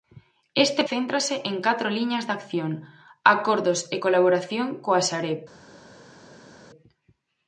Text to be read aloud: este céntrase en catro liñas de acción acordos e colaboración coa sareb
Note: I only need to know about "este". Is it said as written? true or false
true